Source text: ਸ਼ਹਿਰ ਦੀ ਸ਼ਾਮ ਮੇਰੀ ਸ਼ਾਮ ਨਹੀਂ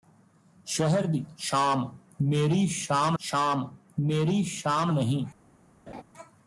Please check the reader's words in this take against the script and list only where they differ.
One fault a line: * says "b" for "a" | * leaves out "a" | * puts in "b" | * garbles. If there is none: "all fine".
* puts in "ਸ਼ਾਮ ਮੇਰੀ ਸ਼ਾਮ"